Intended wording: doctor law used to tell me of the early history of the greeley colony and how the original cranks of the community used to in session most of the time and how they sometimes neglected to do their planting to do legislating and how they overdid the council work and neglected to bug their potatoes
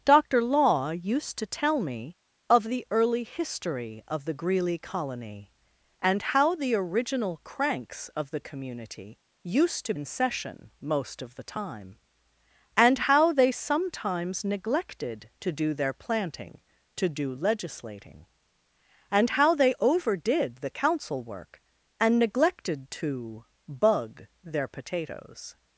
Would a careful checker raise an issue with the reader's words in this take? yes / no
no